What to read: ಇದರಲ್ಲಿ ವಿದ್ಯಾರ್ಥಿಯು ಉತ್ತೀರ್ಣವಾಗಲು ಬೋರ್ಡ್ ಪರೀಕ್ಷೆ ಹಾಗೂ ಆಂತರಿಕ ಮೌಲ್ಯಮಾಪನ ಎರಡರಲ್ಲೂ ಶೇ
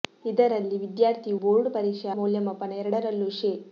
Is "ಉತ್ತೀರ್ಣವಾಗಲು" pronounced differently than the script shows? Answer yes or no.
yes